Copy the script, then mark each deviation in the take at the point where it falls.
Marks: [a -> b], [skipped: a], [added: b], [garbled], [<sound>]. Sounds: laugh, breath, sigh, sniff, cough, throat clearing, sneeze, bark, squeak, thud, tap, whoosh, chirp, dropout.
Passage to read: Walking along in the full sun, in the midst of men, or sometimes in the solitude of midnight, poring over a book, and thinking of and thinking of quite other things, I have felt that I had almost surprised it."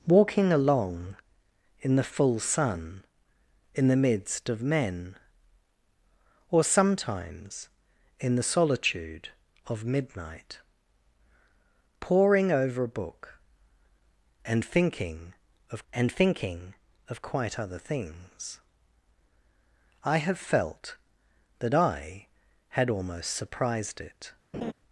Walking along in the full sun, in the midst of men, or sometimes in the solitude of midnight, poring over a book, and thinking of and thinking of quite other things, I have felt that I had almost surprised it." [laugh]